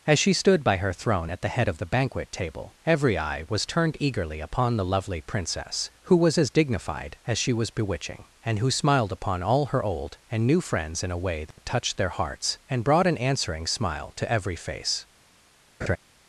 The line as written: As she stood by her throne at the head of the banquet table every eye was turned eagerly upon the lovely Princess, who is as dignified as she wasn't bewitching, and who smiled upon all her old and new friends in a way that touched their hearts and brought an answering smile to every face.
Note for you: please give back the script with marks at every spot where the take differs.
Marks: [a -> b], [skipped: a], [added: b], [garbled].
As she stood by her throne at the head of the banquet table every eye was turned eagerly upon the lovely Princess, who [is -> was] as dignified as she [wasn't -> was] bewitching, and who smiled upon all her old and new friends in a way that touched their hearts and brought an answering smile to every face.